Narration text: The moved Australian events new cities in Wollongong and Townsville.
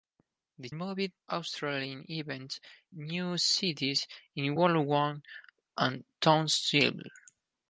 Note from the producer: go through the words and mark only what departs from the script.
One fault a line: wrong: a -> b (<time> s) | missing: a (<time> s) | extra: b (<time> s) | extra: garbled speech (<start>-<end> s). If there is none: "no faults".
no faults